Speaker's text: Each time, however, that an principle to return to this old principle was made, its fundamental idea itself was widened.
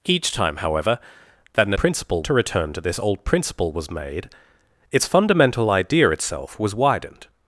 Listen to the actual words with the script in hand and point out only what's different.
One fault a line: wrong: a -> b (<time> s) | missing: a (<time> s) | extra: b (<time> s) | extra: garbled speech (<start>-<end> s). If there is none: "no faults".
no faults